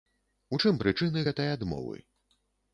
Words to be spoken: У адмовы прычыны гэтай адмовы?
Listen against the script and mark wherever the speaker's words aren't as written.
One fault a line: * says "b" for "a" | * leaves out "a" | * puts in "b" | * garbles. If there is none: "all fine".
* says "чым" for "адмовы"